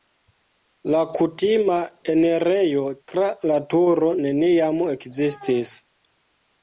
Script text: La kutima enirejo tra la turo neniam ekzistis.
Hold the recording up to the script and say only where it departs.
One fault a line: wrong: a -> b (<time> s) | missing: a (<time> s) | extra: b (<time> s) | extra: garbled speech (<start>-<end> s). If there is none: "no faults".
no faults